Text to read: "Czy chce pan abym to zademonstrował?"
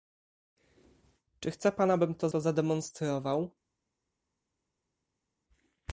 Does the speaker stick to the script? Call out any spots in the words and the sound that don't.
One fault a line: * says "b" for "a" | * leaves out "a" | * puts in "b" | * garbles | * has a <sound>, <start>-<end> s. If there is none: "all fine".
* puts in "to"